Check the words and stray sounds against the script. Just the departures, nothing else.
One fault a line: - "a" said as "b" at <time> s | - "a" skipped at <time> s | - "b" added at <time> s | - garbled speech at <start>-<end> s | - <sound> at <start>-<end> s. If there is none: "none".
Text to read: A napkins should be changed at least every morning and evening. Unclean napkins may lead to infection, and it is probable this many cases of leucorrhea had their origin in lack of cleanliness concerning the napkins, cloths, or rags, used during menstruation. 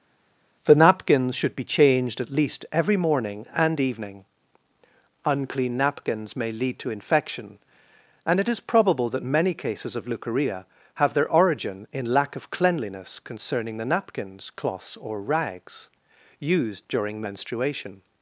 - "A" said as "The" at 0.7 s
- "this" said as "that" at 9.1 s
- "had" said as "have" at 10.9 s